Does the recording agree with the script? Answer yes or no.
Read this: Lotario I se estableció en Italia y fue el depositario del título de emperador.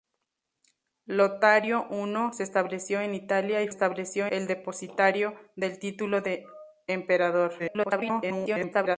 no